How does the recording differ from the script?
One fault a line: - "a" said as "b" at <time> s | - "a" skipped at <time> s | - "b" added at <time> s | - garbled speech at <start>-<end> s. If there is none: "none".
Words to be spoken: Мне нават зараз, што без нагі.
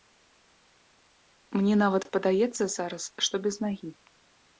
- "падаецца" added at 2.1 s